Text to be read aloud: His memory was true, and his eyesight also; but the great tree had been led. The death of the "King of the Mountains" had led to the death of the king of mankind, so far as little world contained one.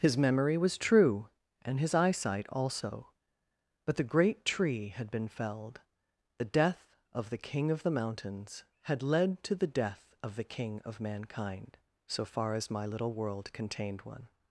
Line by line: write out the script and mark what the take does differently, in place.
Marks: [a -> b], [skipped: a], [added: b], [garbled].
His memory was true, and his eyesight also; but the great tree had been [led. -> felled] The death of the "King of the Mountains" had led to the death of the king of mankind, so far as [added: my] little world contained one.